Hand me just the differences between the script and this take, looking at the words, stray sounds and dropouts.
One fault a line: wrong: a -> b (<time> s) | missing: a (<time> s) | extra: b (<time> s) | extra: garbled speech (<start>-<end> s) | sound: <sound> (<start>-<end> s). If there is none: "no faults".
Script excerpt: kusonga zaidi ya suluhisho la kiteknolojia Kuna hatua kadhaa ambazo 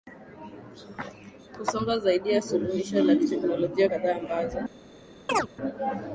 missing: Kuna hatua (3.9 s)
sound: chirp (5.3-5.5 s)